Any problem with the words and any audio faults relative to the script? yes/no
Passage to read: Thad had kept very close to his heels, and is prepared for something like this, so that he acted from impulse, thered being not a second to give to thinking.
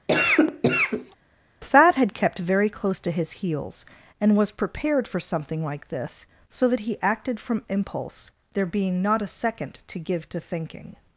yes